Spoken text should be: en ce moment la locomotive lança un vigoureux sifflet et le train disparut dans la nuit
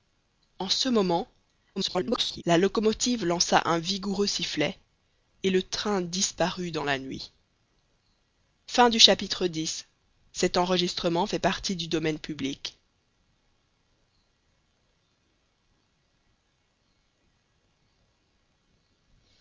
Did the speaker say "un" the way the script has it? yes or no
yes